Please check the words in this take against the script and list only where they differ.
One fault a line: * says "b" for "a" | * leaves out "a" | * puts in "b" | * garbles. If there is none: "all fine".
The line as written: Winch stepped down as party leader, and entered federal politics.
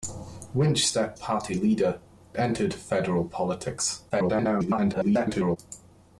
* leaves out "down as"
* leaves out "and"
* garbles